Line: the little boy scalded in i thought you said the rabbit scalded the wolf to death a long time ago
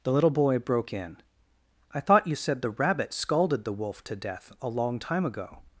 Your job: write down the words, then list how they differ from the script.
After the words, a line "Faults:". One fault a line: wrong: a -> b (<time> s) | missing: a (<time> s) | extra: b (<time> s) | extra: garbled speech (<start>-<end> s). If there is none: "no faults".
the little boy broke in i thought you said the rabbit scalded the wolf to death a long time ago
Faults:
wrong: scalded -> broke (0.6 s)